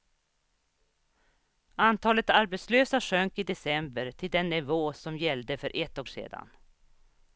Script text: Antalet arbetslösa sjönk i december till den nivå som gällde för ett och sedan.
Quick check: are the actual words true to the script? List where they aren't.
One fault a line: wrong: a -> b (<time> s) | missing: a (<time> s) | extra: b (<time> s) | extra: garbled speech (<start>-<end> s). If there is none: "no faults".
no faults